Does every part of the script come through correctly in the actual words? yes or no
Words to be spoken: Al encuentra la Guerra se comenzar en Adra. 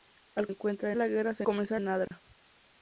yes